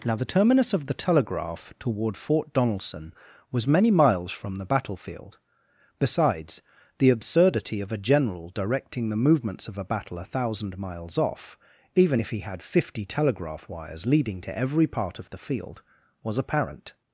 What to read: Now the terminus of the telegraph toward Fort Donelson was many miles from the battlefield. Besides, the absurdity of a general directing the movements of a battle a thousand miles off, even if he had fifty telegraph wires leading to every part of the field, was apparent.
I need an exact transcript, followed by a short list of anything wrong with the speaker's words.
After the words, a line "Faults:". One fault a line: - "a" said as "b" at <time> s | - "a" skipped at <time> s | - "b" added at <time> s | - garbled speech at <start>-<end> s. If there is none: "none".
Now the terminus of the telegraph toward Fort Donelson was many miles from the battlefield. Besides, the absurdity of a general directing the movements of a battle a thousand miles off, even if he had fifty telegraph wires leading to every part of the field, was apparent.
Faults:
none